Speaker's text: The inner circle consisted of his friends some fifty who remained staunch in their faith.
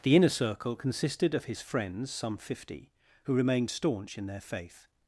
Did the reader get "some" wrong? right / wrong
right